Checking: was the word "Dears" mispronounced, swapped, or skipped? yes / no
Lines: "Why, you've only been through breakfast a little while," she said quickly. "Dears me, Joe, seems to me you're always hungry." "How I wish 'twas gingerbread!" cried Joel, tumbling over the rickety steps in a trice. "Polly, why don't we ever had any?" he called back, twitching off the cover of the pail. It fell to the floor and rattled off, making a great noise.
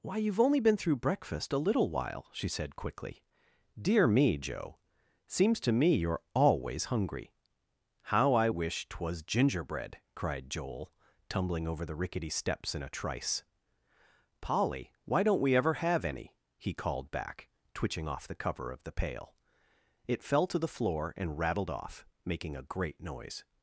yes